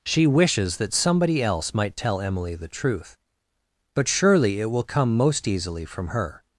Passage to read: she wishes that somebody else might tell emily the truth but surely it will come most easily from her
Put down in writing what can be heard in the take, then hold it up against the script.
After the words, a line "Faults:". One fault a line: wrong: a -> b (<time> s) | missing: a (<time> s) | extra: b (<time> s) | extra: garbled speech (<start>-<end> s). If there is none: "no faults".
she wishes that somebody else might tell emily the truth but surely it will come most easily from her
Faults:
no faults